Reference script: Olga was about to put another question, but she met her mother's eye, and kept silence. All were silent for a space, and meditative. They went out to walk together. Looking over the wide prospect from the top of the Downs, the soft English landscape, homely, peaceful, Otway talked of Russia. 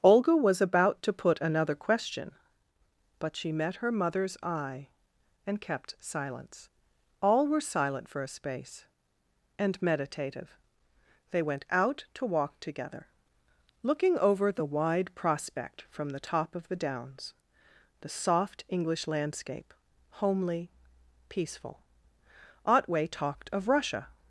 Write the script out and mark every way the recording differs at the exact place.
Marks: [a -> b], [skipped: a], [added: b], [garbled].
Olga was about to put another question, but she met her mother's eye, and kept silence. All were silent for a space, and meditative. They went out to walk together. Looking over the wide prospect from the top of the Downs, the soft English landscape, homely, peaceful, Otway talked of Russia.